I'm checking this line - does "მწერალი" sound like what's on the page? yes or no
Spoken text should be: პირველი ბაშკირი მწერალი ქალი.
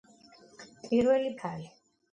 no